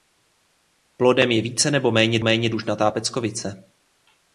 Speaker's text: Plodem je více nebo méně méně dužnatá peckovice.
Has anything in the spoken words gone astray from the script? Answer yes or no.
no